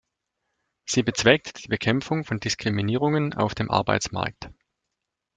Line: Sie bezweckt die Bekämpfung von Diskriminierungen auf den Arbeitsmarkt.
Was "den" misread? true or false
true